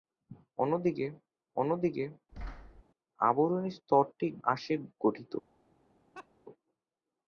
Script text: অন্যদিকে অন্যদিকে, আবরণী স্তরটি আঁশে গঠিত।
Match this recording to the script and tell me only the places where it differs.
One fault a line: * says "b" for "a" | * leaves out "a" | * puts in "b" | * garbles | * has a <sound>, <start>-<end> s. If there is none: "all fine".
* has a thud, 2.3-2.8 s
* has a laugh, 6.1-6.3 s